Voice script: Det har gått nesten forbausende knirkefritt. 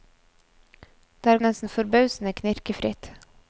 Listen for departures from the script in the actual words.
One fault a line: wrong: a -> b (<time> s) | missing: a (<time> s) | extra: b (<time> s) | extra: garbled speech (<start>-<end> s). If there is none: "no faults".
missing: gått (1.4 s)